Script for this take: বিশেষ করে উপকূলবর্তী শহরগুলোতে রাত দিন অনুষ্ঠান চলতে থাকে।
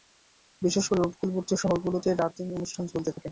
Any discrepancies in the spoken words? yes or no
no